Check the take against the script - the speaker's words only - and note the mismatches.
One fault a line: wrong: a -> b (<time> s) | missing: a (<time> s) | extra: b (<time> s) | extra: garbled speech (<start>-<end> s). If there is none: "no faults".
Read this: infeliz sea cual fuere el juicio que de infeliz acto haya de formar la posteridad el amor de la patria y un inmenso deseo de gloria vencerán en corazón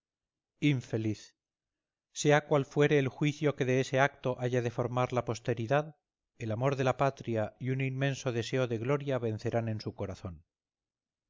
wrong: infeliz -> ese (3.8 s)
extra: su (9.8 s)